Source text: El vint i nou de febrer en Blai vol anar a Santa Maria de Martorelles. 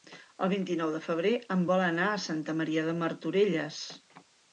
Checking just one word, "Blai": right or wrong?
wrong